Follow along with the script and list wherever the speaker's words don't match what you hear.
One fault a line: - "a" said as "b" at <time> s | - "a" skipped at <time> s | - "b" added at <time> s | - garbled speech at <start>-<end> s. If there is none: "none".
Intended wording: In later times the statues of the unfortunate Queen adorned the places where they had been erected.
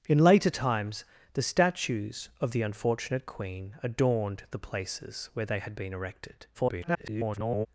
- garbled speech at 6.5-7.7 s